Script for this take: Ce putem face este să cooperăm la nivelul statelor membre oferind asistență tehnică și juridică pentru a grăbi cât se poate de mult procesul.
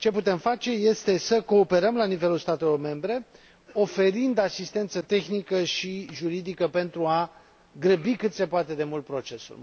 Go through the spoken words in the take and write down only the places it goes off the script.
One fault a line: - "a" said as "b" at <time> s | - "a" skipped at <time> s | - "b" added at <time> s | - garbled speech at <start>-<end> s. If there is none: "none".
none